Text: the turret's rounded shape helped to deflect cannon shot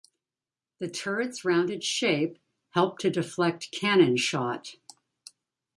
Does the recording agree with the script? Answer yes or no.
yes